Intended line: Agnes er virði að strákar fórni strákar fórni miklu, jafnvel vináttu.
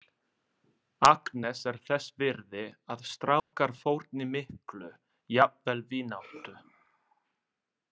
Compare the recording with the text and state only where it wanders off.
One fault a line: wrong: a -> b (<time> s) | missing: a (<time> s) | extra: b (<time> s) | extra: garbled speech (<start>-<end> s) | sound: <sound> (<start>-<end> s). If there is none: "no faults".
extra: þess (1.9 s)
sound: dropout (3.4-3.5 s)
missing: strákar fórni (4.3 s)